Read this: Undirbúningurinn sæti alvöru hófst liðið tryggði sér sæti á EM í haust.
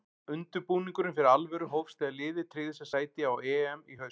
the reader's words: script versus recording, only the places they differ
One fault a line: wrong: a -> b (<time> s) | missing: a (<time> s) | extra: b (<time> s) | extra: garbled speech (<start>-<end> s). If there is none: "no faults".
wrong: sæti -> fyrir (1.2 s)
extra: þegar (2.0 s)